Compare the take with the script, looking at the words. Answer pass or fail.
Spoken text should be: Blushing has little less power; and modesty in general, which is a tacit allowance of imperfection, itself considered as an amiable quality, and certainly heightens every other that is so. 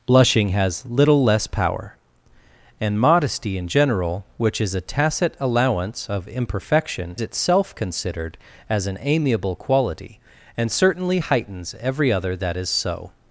pass